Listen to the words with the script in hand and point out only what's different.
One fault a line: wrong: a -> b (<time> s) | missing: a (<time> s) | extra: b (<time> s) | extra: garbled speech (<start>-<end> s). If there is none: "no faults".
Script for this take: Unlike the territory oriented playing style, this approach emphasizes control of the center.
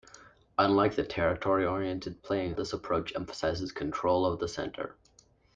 missing: style (2.5 s)